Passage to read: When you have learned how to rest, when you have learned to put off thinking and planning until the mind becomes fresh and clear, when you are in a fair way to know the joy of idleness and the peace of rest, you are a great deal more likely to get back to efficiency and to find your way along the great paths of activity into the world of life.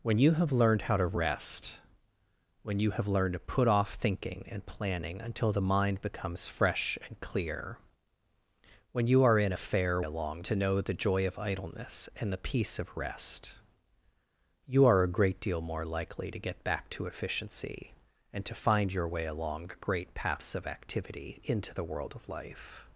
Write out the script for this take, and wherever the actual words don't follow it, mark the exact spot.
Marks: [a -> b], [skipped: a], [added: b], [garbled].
When you have learned how to rest, when you have learned to put off thinking and planning until the mind becomes fresh and clear, when you are in a fair [way -> along] to know the joy of idleness and the peace of rest, you are a great deal more likely to get back to efficiency and to find your way along the great paths of activity into the world of life.